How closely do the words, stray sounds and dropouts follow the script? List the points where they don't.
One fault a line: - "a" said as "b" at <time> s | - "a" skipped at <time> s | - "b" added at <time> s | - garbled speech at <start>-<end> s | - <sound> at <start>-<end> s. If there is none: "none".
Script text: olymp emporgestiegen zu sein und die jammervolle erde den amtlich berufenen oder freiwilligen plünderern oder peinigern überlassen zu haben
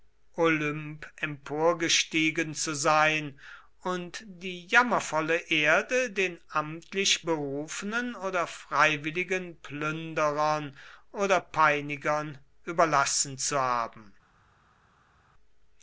none